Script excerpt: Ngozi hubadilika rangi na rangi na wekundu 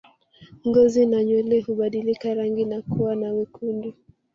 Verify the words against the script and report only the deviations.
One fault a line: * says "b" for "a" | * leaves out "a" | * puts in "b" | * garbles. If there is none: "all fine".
* puts in "na nywele"
* says "kuwa" for "rangi"